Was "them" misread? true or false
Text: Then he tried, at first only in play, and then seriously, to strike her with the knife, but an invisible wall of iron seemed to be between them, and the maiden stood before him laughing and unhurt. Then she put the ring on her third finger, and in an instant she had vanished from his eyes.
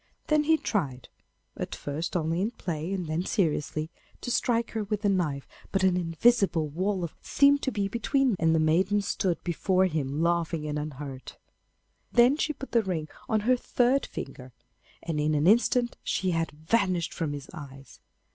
true